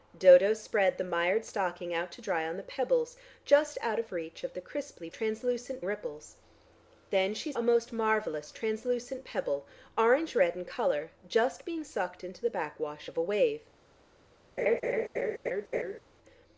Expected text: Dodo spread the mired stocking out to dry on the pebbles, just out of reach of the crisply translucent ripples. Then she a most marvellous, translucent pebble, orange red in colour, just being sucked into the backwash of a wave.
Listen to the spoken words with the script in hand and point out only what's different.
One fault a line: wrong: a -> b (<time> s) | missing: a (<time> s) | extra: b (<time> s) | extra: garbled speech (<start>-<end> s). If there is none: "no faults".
no faults